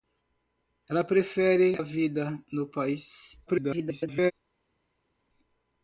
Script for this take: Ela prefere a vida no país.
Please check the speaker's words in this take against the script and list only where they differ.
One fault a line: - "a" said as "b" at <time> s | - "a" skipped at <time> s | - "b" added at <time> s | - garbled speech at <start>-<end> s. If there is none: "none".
- garbled speech at 3.5-4.3 s